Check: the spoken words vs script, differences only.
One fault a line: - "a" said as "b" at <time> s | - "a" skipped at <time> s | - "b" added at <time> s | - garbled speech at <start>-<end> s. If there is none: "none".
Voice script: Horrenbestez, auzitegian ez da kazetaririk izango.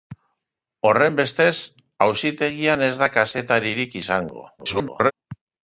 - garbled speech at 4.6-5.1 s